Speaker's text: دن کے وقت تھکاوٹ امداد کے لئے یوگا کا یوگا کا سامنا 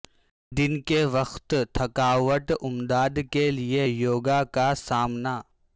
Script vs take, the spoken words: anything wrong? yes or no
yes